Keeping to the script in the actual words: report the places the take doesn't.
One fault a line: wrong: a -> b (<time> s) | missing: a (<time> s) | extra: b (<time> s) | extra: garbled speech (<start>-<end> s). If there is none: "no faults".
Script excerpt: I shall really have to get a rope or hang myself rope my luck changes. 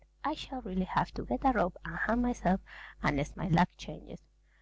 wrong: or -> and (1.8 s)
wrong: rope -> unless (3.0 s)